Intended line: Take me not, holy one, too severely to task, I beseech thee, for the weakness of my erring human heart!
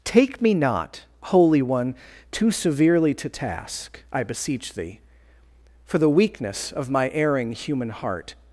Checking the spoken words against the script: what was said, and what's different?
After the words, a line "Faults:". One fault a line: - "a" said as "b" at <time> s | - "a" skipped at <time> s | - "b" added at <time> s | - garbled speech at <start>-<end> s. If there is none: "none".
Take me not, holy one, too severely to task, I beseech thee, for the weakness of my erring human heart!
Faults:
none